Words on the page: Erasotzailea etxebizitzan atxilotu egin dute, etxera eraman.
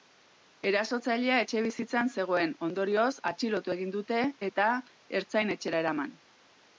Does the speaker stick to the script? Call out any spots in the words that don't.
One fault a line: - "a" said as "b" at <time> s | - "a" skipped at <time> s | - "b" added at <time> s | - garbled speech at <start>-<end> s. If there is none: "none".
- "zegoen ondorioz" added at 2.1 s
- "eta ertzain" added at 4.5 s